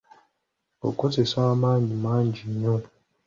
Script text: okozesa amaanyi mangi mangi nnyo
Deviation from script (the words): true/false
true